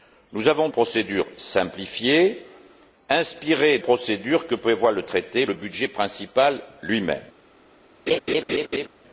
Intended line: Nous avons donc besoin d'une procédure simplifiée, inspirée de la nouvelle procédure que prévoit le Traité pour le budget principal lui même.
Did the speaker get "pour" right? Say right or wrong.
wrong